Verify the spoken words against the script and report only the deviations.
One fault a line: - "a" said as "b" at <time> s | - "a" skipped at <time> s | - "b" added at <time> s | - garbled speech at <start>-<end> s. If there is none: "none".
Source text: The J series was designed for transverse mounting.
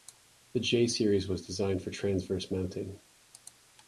none